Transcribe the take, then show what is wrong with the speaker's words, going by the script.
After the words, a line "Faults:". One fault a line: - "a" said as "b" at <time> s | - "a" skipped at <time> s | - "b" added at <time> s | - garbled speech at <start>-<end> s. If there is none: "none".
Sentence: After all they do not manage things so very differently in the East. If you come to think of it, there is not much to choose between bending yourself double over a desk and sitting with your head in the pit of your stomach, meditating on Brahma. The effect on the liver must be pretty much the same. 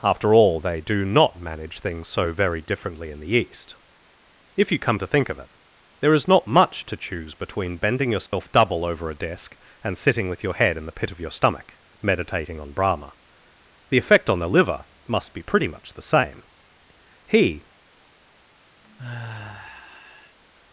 After all they do not manage things so very differently in the East. If you come to think of it, there is not much to choose between bending yourself double over a desk and sitting with your head in the pit of your stomach, meditating on Brahma. The effect on the liver must be pretty much the same. He
Faults:
- "He" added at 17.2 s